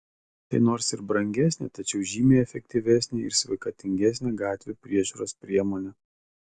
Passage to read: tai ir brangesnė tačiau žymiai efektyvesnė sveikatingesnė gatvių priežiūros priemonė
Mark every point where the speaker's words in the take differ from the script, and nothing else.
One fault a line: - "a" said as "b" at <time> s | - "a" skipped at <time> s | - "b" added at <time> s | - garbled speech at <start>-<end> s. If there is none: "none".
- "nors" added at 0.7 s
- "ir" added at 3.3 s